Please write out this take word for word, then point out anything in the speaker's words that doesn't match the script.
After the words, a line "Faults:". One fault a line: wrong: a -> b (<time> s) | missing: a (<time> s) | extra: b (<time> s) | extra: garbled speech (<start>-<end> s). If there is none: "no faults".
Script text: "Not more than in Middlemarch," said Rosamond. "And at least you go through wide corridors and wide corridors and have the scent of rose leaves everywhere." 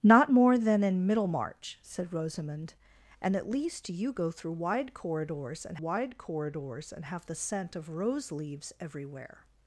"Not more than in Middlemarch," said Rosamond. "And at least you go through wide corridors and wide corridors and have the scent of rose leaves everywhere."
Faults:
no faults